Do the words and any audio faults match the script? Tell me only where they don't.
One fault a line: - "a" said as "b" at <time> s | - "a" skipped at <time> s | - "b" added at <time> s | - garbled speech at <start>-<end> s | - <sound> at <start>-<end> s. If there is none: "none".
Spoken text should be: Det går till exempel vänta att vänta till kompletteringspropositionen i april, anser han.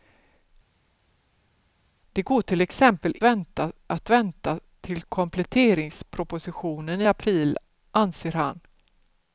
none